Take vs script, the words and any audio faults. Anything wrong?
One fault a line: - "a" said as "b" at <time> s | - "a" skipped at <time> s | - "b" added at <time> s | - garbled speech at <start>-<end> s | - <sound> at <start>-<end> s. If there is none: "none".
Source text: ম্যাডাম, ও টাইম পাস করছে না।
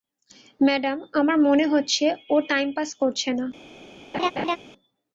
- "আমার মনে হচ্ছে" added at 1.1 s
- laugh at 4.1-4.6 s